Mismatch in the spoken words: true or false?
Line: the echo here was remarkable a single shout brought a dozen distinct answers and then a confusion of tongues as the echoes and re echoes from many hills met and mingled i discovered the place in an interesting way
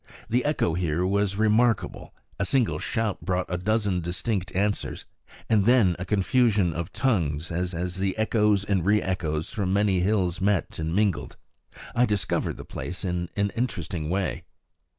true